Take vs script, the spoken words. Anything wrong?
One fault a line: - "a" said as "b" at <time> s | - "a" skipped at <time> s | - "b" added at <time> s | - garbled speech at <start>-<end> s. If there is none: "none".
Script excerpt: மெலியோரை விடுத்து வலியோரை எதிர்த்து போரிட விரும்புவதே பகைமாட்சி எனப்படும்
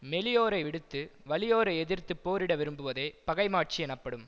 none